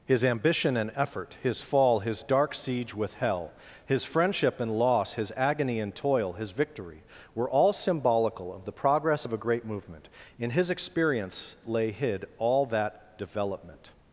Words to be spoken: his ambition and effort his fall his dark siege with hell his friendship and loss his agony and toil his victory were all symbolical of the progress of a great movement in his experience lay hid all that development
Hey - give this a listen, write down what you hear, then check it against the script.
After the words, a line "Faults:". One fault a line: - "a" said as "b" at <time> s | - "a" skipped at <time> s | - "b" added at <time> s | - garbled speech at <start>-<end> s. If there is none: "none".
his ambition and effort his fall his dark siege with hell his friendship and loss his agony and toil his victory were all symbolical of the progress of a great movement in his experience lay hid all that development
Faults:
none